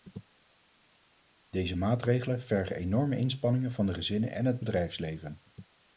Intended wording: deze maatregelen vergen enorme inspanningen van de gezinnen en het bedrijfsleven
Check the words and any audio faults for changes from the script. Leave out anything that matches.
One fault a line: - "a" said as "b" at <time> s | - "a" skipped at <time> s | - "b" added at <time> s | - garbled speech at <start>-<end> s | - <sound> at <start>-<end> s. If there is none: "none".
none